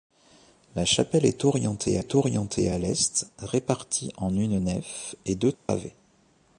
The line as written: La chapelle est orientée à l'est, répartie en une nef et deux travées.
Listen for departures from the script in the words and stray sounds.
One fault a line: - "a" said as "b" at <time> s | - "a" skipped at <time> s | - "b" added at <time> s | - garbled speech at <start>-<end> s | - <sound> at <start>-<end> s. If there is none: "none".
- "est orientée" added at 2.0 s
- dropout at 5.5-5.7 s